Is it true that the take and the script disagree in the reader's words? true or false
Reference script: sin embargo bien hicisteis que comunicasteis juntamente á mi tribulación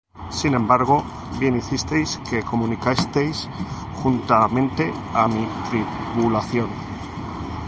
false